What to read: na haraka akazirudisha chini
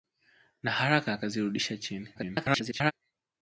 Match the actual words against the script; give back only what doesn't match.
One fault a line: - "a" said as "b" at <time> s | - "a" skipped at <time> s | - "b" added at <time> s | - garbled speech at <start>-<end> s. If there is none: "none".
- garbled speech at 2.1-2.9 s